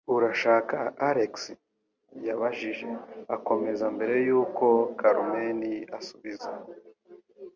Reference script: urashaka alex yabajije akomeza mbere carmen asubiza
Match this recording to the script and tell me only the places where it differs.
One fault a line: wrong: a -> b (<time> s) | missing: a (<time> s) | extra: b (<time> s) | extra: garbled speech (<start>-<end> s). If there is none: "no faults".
extra: yuko (4.3 s)